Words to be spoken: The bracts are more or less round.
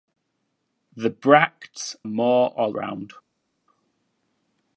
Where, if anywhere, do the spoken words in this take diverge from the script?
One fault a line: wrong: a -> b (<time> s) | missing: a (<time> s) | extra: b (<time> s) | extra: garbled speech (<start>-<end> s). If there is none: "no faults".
missing: are (1.9 s)
missing: less (2.7 s)